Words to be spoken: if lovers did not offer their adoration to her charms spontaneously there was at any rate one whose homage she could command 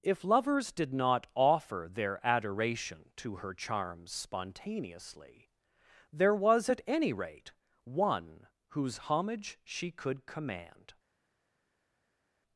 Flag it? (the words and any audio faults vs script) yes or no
no